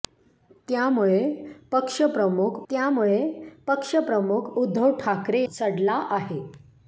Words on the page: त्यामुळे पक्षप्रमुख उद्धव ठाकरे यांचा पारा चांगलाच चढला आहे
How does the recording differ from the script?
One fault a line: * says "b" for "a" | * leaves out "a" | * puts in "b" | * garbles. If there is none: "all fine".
* puts in "त्यामुळे पक्षप्रमुख"
* leaves out "यांचा पारा चांगलाच"